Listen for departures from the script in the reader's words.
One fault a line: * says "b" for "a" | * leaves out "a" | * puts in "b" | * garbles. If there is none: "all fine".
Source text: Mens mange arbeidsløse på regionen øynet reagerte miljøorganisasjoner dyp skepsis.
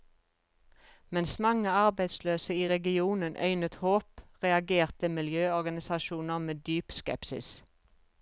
* says "i" for "på"
* puts in "håp"
* puts in "med"